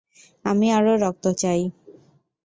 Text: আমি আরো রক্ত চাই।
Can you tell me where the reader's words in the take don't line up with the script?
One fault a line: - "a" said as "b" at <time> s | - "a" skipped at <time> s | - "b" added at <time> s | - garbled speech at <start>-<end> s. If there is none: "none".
none